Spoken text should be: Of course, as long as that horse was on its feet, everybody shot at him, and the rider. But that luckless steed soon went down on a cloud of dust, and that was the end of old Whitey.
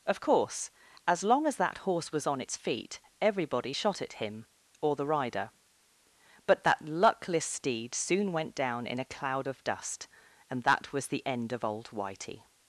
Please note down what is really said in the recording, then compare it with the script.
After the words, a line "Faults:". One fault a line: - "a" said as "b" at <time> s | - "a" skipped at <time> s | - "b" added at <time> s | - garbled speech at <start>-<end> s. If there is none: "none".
Of course, as long as that horse was on its feet, everybody shot at him, or the rider. But that luckless steed soon went down in a cloud of dust, and that was the end of old Whitey.
Faults:
- "and" said as "or" at 4.8 s
- "on" said as "in" at 8.9 s